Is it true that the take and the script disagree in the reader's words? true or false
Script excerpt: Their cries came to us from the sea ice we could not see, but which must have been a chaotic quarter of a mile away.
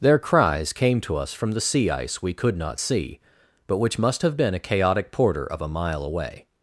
true